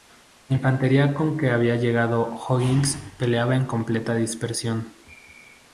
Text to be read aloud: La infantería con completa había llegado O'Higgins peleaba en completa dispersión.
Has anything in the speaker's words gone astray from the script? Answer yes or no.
yes